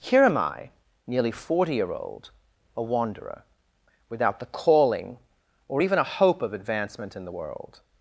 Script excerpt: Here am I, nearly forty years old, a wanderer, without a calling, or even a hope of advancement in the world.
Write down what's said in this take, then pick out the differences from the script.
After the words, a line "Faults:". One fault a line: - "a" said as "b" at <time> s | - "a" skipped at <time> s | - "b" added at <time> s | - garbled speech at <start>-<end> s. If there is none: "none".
Here am I, nearly forty year old, a wanderer, without the calling, or even a hope of advancement in the world.
Faults:
- "years" said as "year" at 1.8 s
- "a" said as "the" at 4.4 s